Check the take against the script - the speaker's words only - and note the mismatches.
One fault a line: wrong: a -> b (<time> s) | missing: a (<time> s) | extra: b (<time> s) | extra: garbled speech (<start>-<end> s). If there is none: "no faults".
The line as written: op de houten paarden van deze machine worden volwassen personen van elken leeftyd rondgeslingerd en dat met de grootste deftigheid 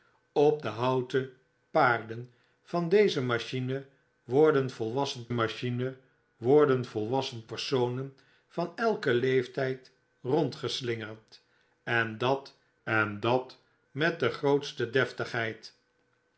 extra: machine worden volwassen (5.3 s)
extra: en dat (12.8 s)